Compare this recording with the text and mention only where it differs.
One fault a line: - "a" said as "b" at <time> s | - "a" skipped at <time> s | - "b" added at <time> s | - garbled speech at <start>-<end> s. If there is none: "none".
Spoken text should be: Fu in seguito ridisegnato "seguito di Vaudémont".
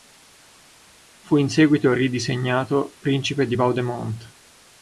- "seguito" said as "principe" at 3.0 s